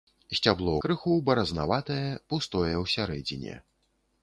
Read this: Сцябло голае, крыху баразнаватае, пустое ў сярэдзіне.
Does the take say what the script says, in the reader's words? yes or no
no